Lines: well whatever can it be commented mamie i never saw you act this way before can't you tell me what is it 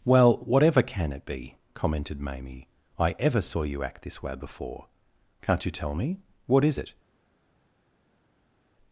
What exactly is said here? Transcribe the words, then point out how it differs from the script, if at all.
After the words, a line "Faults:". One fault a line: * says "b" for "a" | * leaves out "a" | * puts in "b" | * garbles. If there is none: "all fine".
well whatever can it be commented mamie i ever saw you act this way before can't you tell me what is it
Faults:
* says "ever" for "never"